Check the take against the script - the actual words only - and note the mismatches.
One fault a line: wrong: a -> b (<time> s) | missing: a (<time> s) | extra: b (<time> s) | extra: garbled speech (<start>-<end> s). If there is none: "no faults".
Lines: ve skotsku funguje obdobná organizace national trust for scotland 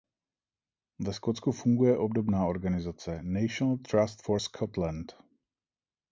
no faults